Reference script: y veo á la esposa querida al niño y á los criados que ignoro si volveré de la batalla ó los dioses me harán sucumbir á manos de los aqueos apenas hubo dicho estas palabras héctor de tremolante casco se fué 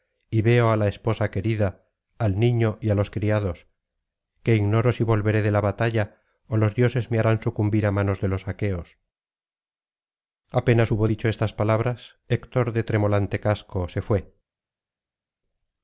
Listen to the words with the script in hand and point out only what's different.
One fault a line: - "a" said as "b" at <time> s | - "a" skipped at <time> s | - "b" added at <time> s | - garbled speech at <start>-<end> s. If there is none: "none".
none